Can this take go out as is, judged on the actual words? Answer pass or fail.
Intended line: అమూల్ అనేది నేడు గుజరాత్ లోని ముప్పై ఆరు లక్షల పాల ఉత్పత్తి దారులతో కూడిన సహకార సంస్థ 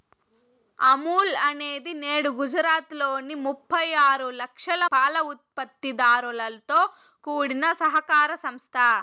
pass